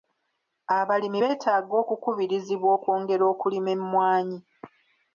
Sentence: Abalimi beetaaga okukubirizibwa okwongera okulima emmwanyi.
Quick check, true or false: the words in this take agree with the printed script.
true